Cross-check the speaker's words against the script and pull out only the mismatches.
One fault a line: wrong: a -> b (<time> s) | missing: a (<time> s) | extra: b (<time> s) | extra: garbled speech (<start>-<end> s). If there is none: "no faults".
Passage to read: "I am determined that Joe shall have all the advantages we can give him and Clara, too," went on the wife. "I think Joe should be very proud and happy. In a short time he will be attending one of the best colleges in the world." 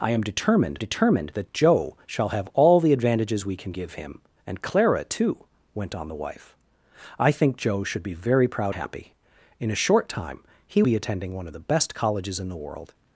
extra: determined (0.8 s)
missing: and (8.7 s)
missing: will (10.8 s)